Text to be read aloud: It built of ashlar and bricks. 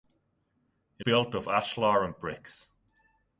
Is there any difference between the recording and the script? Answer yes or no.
no